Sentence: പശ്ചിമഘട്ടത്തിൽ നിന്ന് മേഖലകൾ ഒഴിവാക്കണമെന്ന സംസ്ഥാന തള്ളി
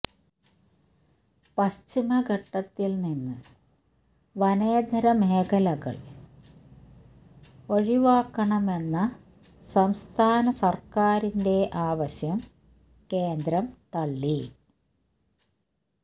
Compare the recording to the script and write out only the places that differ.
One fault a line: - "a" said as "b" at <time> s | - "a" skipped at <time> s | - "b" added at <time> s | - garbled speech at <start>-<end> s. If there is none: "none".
- "വനേതര" added at 4.3 s
- "സർക്കാരിന്റെ ആവശ്യം കേന്ദ്രം" added at 10.5 s